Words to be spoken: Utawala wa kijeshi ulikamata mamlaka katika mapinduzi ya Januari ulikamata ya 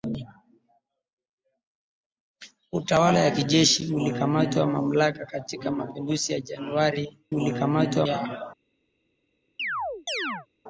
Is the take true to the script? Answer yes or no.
yes